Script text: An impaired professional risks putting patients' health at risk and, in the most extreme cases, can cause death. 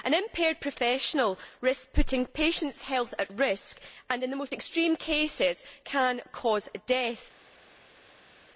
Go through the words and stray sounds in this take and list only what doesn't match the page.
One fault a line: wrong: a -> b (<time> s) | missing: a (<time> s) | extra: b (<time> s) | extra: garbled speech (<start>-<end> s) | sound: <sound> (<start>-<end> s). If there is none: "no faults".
no faults